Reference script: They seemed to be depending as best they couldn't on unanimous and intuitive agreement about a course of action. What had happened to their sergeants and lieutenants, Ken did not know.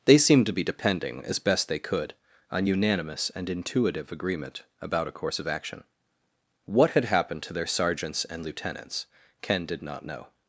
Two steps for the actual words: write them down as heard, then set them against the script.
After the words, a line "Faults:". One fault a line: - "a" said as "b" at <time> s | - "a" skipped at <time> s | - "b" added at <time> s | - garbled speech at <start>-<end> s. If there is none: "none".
They seemed to be depending as best they could on unanimous and intuitive agreement about a course of action. What had happened to their sergeants and lieutenants, Ken did not know.
Faults:
- "couldn't" said as "could" at 1.8 s